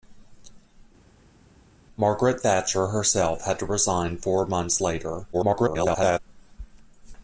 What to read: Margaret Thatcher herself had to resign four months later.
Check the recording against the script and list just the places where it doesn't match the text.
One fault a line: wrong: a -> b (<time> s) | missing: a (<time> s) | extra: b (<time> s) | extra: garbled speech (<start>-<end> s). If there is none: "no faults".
extra: garbled speech (5.3-6.2 s)